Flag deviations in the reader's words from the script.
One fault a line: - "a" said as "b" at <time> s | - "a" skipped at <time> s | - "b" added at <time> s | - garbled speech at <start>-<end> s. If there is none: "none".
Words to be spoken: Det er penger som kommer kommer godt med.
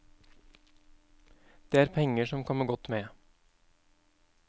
- "kommer" skipped at 2.6 s